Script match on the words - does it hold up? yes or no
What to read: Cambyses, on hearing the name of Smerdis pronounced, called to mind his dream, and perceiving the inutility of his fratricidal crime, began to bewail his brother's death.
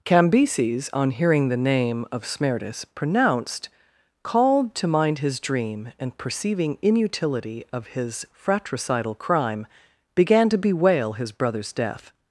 no